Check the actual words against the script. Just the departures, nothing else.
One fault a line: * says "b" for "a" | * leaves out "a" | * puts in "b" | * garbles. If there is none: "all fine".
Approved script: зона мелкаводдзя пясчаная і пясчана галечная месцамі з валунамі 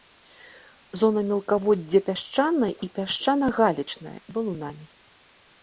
* leaves out "месцамі"